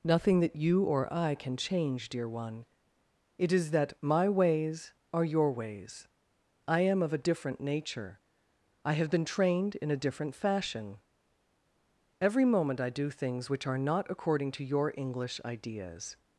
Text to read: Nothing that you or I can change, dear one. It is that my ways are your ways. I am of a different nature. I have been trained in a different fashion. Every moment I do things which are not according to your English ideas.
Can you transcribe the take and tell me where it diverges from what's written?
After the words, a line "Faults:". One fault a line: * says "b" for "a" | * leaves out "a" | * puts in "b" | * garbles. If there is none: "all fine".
Nothing that you or I can change, dear one. It is that my ways are your ways. I am of a different nature. I have been trained in a different fashion. Every moment I do things which are not according to your English ideas.
Faults:
all fine